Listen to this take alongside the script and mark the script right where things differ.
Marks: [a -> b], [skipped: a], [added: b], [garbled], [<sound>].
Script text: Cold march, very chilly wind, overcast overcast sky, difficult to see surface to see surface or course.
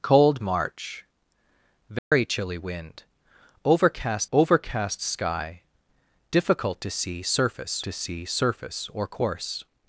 Cold march, very [dropout] chilly wind, overcast overcast sky, difficult to see surface to see surface or course.